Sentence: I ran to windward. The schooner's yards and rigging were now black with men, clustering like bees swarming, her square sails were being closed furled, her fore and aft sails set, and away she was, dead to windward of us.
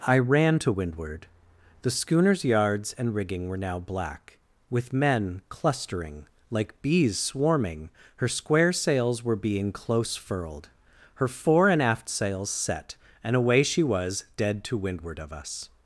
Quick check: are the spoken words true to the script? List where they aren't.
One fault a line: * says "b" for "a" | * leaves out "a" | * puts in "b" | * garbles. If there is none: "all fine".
* says "close" for "closed"